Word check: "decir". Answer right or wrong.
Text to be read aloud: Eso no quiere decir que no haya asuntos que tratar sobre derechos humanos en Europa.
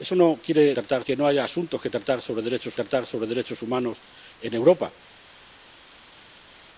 wrong